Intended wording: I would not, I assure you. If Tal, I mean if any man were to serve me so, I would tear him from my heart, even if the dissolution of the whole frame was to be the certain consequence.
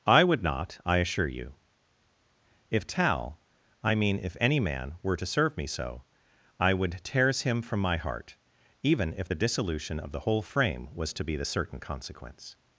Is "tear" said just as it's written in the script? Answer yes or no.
no